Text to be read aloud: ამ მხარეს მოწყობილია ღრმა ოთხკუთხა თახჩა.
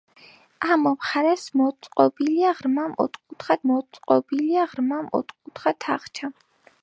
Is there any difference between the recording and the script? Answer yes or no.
yes